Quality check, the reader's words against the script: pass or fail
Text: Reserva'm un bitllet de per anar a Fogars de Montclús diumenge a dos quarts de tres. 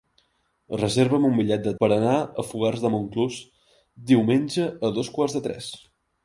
pass